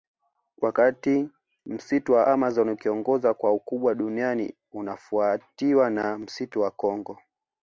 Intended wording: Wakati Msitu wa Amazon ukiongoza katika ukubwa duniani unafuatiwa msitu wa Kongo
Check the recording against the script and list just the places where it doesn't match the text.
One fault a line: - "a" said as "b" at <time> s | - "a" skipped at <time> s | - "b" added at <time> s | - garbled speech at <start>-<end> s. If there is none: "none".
- "katika" said as "kwa" at 3.3 s
- "na" added at 5.9 s